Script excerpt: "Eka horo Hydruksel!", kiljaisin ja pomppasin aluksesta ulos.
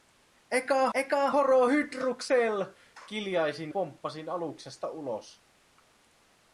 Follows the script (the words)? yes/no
no